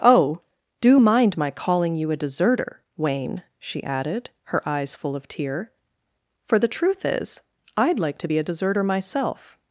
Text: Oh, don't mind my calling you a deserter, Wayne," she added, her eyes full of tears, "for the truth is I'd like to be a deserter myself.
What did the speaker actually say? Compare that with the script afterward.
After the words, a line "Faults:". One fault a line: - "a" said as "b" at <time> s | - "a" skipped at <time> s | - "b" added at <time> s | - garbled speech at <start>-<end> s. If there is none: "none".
Oh, do mind my calling you a deserter, Wayne," she added, her eyes full of tear, "for the truth is I'd like to be a deserter myself.
Faults:
- "don't" said as "do" at 0.8 s
- "tears" said as "tear" at 5.3 s